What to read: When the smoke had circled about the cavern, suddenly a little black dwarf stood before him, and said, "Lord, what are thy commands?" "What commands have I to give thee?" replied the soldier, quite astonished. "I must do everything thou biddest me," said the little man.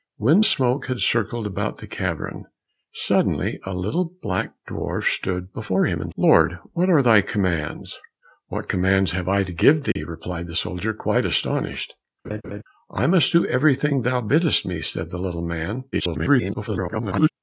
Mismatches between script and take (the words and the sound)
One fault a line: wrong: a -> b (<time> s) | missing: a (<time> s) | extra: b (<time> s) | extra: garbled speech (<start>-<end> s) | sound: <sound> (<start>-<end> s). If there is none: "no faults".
missing: the (0.4 s)
missing: said (6.1 s)
sound: dropout (9.9-10.0 s)
sound: laugh (12.2-12.6 s)
extra: garbled speech (15.9-17.3 s)